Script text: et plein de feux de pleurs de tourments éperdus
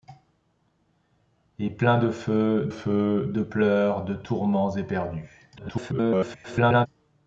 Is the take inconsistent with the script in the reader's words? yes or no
yes